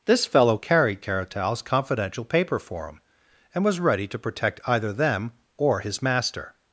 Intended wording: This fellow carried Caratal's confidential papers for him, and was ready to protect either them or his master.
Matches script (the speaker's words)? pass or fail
fail